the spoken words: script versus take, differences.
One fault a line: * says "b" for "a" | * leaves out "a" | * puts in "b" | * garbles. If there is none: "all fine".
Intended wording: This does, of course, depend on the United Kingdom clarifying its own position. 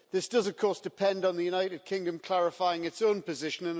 all fine